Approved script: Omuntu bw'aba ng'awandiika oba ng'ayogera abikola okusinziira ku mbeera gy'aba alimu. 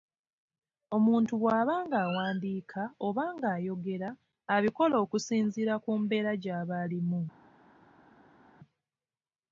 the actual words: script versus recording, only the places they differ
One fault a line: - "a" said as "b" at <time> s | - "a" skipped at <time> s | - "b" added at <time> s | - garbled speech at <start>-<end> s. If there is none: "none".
none